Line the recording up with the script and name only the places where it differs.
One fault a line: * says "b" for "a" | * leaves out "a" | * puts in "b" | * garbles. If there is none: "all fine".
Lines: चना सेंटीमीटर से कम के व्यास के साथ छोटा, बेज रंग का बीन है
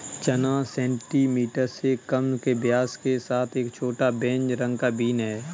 * puts in "एक"